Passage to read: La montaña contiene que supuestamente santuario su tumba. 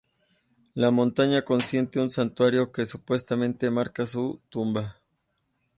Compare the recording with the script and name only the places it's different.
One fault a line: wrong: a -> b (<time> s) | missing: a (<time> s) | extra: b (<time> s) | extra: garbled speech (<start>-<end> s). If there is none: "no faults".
extra: un santuario (2.0 s)
wrong: santuario -> marca (3.7 s)